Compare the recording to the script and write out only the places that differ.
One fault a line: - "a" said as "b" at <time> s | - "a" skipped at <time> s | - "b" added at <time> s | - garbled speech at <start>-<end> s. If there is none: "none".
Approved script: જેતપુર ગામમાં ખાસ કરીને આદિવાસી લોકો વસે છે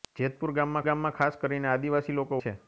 - "ગામમાં" added at 0.8 s
- "વસે" skipped at 2.4 s